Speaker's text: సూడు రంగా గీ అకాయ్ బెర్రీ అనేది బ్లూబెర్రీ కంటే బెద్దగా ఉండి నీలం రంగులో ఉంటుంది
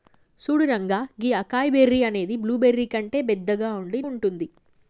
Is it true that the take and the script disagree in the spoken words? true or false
true